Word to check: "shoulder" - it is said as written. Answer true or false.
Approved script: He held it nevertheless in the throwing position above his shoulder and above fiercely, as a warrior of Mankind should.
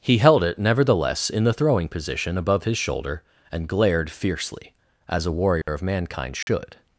true